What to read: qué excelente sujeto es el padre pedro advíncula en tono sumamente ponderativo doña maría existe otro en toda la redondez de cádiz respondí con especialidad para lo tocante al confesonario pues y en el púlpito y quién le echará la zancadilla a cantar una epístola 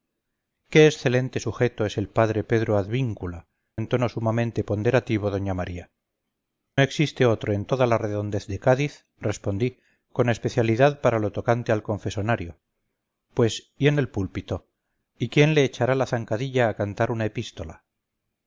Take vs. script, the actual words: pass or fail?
pass